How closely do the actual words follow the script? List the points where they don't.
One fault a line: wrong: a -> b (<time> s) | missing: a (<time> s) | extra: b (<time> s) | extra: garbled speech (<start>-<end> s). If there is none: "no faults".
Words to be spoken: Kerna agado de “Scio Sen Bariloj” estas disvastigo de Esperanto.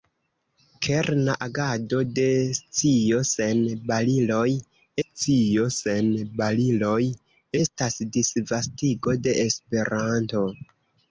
extra: scio Sen Bariloj (5.0 s)